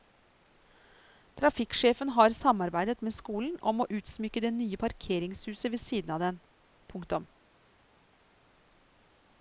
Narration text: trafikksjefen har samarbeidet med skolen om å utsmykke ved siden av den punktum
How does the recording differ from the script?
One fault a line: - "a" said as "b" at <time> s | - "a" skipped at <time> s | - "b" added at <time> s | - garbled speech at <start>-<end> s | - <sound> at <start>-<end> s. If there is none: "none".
- "det nye parkeringshuset" added at 4.4 s